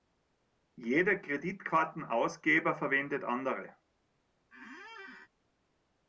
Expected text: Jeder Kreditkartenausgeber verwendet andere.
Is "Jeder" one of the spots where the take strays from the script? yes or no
no